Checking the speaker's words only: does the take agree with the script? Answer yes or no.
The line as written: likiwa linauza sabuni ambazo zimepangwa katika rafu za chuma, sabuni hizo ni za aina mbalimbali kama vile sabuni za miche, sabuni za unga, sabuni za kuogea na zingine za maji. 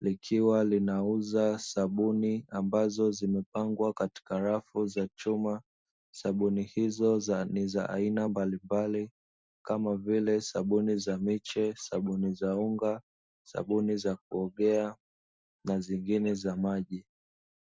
yes